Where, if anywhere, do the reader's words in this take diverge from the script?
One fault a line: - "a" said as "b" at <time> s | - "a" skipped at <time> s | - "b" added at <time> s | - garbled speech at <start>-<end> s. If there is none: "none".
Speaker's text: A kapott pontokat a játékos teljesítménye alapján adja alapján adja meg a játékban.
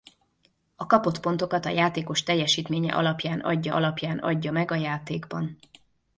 none